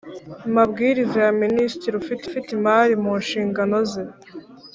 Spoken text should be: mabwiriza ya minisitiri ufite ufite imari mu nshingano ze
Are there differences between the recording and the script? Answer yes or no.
no